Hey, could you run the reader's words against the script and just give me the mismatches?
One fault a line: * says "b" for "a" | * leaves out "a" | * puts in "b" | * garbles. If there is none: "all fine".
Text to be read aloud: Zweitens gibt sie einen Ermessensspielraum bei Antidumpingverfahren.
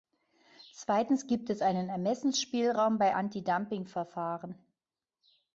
* says "es" for "sie"